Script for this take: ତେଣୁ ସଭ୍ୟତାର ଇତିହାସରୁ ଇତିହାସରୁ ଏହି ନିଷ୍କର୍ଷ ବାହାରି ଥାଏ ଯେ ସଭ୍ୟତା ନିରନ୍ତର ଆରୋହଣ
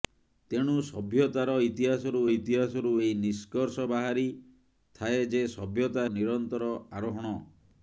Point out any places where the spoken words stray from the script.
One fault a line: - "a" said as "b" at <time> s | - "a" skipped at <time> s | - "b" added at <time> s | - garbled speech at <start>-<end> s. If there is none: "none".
none